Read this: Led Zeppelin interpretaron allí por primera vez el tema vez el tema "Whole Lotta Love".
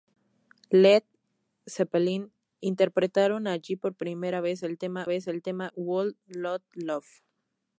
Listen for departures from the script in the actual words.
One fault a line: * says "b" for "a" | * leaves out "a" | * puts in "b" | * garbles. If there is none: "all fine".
all fine